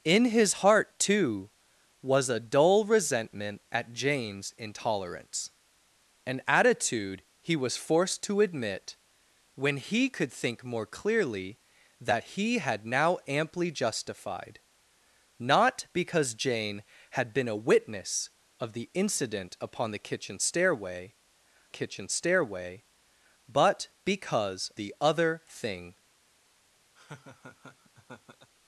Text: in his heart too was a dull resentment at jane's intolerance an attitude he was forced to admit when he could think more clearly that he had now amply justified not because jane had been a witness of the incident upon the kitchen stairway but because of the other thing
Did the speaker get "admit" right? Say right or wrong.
right